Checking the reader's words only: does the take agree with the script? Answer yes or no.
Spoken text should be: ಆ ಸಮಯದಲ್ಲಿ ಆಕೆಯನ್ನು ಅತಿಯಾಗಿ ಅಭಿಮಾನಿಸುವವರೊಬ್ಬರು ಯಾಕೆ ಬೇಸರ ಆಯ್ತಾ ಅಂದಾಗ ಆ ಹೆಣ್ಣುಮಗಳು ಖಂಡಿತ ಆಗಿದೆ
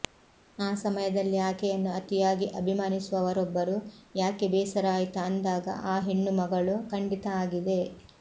yes